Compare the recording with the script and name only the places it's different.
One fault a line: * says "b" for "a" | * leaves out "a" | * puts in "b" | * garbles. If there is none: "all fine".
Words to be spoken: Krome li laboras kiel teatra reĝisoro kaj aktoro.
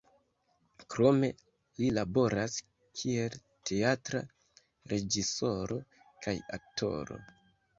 all fine